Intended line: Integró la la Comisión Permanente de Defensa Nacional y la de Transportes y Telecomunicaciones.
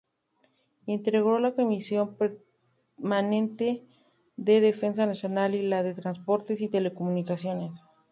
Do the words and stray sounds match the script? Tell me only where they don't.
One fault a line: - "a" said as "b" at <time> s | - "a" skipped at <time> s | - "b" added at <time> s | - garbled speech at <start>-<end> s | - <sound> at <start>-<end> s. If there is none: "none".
- "la" skipped at 1.5 s